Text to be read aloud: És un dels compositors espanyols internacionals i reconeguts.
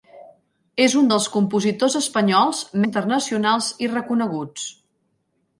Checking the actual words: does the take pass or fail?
pass